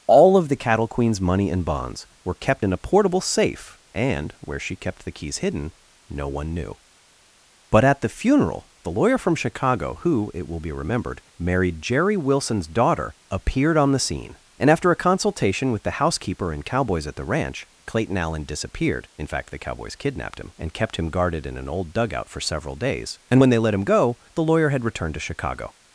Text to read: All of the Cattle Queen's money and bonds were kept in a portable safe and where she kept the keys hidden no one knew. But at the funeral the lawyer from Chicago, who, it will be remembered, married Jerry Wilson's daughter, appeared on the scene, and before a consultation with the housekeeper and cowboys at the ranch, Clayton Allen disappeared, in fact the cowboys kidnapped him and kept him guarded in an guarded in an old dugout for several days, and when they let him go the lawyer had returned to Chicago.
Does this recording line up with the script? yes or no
no